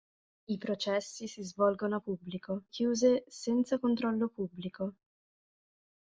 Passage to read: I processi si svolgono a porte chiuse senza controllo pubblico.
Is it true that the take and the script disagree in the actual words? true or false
true